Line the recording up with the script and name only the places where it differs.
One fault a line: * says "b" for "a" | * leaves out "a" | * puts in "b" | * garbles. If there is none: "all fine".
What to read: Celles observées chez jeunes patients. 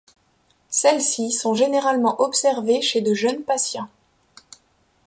* puts in "ci sont généralement"
* puts in "de"